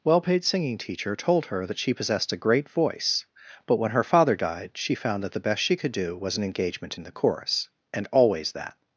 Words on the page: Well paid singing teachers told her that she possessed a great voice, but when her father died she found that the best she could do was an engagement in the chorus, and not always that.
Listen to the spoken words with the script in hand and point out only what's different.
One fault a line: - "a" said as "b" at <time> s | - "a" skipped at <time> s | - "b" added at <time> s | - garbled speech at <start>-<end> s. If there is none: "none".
- "teachers" said as "teacher" at 0.8 s
- "not" skipped at 8.1 s